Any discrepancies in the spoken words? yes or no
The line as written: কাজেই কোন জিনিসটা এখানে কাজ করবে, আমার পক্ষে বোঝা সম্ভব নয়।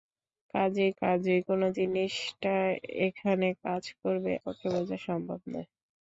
yes